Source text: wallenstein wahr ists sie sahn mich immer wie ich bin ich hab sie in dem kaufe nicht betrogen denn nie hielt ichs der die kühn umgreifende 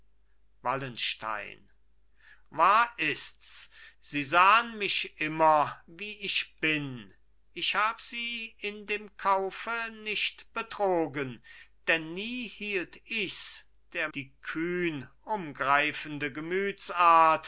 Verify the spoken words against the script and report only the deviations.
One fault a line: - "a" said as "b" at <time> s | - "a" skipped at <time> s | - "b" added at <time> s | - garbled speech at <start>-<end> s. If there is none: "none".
none